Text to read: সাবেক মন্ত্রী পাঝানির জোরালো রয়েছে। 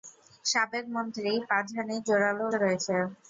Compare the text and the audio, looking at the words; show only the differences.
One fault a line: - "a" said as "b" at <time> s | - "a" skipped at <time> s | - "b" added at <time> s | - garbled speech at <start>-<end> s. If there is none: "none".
none